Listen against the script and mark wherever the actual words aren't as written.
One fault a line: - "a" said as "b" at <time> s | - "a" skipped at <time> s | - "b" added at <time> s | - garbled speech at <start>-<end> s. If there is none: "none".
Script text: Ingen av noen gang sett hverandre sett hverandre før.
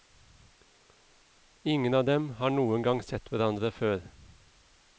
- "dem har" added at 2.0 s
- "sett hverandre" skipped at 3.7 s